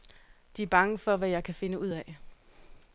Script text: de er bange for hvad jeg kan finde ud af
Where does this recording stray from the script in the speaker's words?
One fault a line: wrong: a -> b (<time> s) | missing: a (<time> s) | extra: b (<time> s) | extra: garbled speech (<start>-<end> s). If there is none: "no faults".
no faults